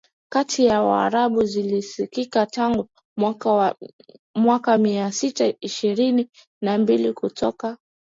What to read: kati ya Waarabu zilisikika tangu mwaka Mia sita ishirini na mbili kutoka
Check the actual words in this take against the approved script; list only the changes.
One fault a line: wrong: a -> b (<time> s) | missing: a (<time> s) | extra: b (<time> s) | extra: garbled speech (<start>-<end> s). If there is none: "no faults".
no faults